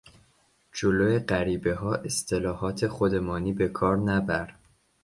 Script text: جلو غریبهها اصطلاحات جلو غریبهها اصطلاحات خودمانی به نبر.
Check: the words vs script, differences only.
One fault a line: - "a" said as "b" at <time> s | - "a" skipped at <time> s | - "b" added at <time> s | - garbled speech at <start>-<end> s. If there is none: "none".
- "جلو غریبهها اصطلاحات" skipped at 2.9 s
- "کار" added at 3.7 s